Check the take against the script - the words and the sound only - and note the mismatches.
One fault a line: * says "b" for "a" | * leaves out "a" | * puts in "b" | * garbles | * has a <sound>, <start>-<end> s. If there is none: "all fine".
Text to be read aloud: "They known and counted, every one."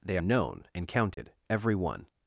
* has a dropout, 1.1-1.2 s